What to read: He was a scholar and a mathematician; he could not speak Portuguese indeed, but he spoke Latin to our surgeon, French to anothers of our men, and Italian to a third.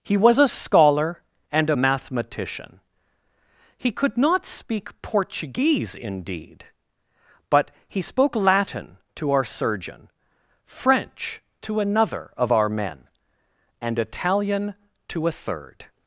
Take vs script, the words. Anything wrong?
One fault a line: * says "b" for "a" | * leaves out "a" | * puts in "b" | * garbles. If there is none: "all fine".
* says "another" for "anothers"